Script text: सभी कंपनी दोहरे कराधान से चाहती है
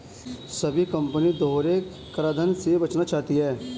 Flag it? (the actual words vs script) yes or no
yes